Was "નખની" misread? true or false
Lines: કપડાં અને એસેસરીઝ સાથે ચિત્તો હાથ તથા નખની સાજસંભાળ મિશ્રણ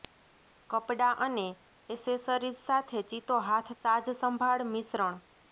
true